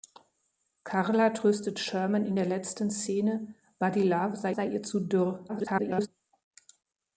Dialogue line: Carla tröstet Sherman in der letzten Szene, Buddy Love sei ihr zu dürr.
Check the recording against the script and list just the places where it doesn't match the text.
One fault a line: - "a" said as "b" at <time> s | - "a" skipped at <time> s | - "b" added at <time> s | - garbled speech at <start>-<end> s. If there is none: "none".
- "sei" added at 4.5 s
- garbled speech at 5.5-6.1 s